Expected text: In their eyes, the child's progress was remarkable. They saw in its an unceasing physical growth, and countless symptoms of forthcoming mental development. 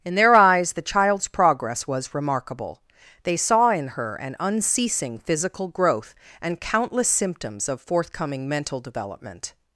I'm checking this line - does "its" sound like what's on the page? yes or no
no